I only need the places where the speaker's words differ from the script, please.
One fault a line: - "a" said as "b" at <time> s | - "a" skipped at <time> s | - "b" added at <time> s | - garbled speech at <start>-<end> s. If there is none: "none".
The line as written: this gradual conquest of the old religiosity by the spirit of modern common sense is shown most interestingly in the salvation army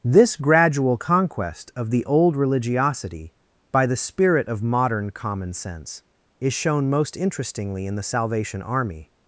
none